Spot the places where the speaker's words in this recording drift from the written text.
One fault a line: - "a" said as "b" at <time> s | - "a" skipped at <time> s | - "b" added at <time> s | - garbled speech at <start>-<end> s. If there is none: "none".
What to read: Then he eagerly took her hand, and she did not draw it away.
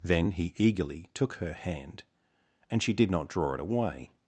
none